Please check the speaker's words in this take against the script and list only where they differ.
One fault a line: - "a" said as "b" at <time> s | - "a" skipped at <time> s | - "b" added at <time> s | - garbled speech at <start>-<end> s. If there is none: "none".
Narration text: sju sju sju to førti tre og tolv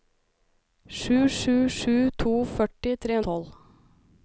none